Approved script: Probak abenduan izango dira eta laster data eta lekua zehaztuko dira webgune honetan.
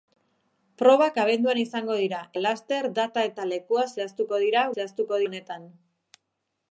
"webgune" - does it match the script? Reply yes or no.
no